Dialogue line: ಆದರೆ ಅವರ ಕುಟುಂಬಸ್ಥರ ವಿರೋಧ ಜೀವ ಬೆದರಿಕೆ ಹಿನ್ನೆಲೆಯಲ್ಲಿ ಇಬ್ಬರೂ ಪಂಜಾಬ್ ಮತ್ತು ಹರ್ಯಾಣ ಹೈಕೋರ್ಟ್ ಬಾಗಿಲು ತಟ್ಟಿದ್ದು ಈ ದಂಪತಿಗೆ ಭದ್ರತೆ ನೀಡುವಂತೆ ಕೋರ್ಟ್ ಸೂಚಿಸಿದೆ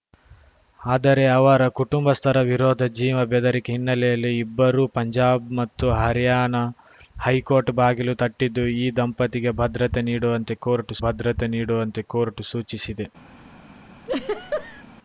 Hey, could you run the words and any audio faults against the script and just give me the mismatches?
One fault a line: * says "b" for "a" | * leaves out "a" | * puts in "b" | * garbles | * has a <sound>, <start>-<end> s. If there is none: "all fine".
* puts in "ಭದ್ರತೆ ನೀಡುವಂತೆ ಕೋರ್ಟ್"
* has a laugh, 14.0-14.8 s